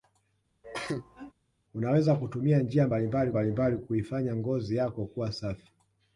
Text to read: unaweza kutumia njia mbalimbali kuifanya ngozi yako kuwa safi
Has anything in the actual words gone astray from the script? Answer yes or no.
yes